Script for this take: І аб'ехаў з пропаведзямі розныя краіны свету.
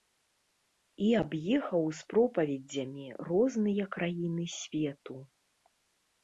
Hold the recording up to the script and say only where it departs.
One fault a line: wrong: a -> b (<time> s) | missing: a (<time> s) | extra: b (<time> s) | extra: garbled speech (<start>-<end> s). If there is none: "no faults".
no faults